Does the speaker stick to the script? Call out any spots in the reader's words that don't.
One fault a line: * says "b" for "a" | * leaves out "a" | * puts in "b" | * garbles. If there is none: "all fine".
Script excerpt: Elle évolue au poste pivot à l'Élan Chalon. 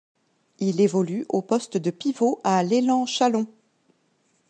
* says "Il" for "Elle"
* puts in "de"